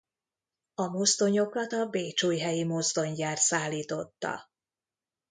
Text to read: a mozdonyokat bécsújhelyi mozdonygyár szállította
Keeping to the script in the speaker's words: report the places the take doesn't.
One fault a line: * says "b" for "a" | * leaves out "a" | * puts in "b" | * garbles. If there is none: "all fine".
* puts in "a"